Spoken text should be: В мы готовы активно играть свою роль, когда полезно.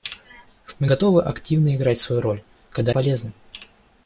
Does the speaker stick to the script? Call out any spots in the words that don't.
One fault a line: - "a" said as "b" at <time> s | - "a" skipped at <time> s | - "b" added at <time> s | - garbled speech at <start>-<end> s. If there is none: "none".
none